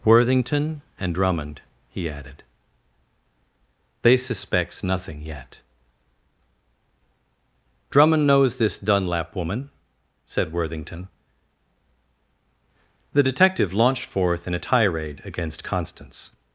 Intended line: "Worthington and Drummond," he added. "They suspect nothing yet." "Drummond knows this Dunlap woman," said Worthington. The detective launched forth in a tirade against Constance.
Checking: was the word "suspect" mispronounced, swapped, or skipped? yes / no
yes